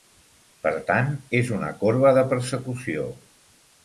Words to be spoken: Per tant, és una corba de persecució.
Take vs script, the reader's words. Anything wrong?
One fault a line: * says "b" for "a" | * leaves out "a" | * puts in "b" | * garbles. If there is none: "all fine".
all fine